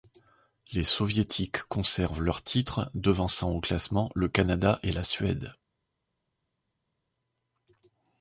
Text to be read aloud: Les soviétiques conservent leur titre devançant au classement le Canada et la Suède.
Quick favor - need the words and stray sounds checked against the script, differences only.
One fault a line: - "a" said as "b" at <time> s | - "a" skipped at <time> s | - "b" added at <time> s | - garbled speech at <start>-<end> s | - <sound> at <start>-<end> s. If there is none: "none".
none